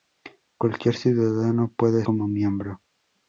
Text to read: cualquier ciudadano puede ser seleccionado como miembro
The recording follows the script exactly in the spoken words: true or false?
false